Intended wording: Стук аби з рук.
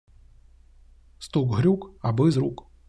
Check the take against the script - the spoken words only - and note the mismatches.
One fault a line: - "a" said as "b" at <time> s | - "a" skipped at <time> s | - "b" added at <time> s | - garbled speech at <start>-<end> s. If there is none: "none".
- "грюк" added at 1.6 s